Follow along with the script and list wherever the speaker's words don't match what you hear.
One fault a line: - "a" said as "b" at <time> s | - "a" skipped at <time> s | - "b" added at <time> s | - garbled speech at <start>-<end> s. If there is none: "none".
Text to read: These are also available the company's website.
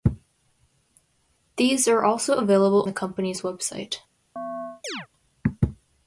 none